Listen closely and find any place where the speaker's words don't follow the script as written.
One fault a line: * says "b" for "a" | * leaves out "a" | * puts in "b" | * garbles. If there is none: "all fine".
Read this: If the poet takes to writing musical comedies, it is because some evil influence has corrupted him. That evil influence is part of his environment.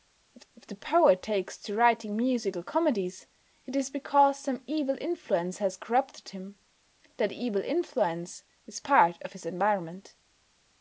* puts in "if"